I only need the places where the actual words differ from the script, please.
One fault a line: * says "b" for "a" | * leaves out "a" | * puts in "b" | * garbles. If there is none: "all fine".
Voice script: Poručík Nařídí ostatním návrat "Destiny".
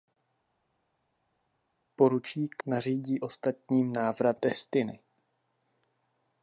all fine